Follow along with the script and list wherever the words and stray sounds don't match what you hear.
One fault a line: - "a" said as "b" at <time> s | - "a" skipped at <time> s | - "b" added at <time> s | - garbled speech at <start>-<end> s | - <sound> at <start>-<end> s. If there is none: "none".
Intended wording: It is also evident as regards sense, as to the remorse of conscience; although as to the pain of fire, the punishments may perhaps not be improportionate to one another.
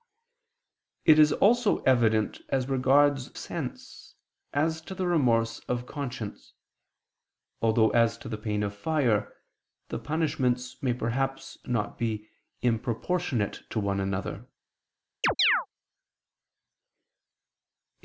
- chirp at 15.2-15.7 s